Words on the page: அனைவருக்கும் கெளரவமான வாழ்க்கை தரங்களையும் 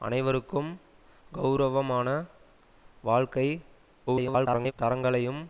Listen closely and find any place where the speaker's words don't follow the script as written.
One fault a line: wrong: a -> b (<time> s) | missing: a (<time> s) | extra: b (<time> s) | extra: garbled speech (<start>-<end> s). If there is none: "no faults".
extra: garbled speech (4.1-4.7 s)